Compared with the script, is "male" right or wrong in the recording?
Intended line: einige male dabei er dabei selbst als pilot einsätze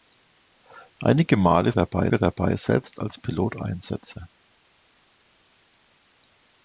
right